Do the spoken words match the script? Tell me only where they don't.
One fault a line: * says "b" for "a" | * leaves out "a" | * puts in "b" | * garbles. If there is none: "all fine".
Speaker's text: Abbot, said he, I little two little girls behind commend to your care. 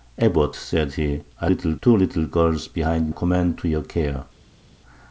all fine